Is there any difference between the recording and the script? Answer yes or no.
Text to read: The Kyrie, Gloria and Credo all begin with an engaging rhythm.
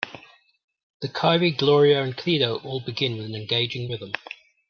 no